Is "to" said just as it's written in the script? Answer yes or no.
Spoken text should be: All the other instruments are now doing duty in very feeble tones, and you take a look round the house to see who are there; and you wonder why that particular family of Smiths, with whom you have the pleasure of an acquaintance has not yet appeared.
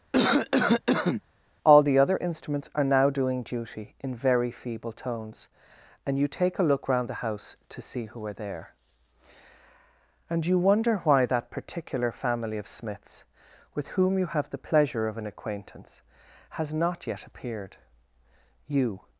yes